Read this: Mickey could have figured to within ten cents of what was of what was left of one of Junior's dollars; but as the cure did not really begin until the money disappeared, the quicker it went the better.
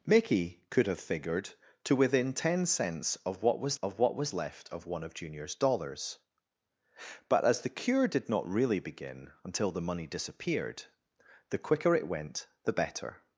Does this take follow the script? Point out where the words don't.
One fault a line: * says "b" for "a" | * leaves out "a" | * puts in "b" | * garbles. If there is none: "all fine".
all fine